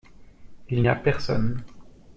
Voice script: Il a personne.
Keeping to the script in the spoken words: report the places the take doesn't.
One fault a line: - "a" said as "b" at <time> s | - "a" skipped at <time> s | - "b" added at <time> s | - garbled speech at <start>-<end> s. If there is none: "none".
none